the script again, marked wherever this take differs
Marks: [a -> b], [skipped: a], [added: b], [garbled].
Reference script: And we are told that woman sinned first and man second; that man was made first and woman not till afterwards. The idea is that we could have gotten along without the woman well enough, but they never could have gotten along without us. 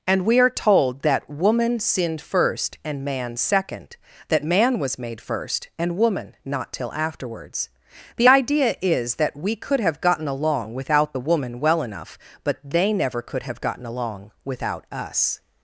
And we are told that woman sinned first and man second; that man was made first and woman not till afterwards. The idea is that we could have gotten along without the woman well enough, but they never could have gotten along without us.